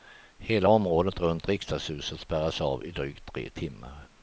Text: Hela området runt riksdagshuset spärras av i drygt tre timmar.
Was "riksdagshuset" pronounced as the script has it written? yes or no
yes